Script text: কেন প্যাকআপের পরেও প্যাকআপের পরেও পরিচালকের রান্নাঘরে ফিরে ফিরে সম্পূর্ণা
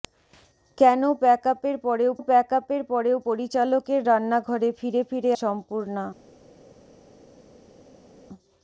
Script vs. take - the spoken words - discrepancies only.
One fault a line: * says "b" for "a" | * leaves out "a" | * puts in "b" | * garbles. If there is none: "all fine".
all fine